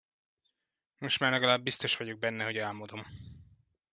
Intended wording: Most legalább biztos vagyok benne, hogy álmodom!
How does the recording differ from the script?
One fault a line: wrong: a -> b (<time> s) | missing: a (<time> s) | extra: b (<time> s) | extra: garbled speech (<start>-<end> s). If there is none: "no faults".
extra: már (1.2 s)